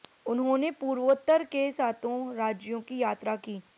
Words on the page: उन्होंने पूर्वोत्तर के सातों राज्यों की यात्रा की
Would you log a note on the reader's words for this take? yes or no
no